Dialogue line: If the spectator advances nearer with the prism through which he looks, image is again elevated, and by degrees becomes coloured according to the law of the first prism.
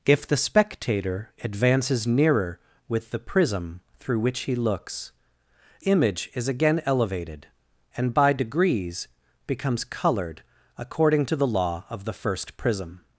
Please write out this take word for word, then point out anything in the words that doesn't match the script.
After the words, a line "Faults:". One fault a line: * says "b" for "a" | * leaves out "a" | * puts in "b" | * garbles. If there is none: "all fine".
If the spectator advances nearer with the prism through which he looks, image is again elevated, and by degrees becomes coloured according to the law of the first prism.
Faults:
all fine